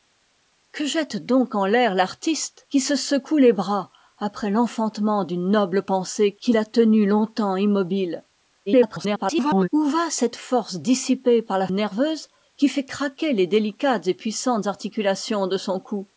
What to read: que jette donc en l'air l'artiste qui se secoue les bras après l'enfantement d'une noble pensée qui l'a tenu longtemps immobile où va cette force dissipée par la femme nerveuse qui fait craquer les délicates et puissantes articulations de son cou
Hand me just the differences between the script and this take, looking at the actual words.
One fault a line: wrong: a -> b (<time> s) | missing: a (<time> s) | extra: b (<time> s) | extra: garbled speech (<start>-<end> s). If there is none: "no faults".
extra: garbled speech (8.7-9.7 s)
missing: femme (11.7 s)